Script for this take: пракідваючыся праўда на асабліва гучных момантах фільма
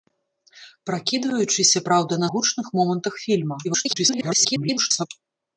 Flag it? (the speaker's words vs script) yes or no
yes